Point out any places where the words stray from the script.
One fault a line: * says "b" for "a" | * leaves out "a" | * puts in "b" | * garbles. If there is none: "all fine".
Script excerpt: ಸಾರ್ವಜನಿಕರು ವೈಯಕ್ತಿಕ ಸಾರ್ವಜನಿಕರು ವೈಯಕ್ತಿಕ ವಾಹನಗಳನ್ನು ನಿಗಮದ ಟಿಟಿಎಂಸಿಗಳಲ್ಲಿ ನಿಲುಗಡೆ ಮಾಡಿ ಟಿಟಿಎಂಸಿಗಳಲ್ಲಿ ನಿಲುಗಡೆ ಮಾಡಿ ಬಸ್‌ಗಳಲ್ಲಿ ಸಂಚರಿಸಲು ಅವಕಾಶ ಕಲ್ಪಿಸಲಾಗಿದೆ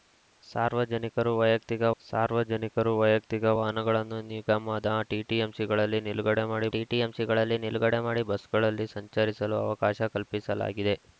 all fine